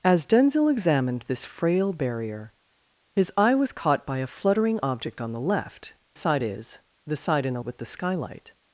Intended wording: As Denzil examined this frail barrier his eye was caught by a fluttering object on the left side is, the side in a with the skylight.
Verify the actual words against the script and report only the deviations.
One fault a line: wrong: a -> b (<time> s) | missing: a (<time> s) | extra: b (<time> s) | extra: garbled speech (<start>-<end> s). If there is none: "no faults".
no faults